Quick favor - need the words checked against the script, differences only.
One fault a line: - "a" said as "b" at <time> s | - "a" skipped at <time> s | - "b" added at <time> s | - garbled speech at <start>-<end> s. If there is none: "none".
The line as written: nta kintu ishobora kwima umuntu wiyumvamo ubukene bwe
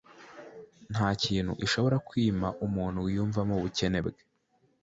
none